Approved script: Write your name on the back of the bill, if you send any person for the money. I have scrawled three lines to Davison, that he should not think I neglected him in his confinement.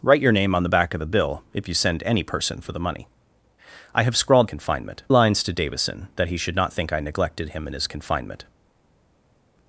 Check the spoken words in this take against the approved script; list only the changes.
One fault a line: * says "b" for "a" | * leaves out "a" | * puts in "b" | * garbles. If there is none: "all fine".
* says "confinement" for "three"